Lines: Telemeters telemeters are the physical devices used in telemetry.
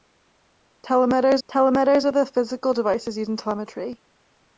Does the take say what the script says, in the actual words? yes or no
yes